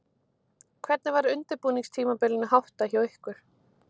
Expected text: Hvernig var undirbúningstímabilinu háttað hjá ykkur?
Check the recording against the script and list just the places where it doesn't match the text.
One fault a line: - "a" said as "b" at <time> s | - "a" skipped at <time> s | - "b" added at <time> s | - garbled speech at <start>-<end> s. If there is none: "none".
none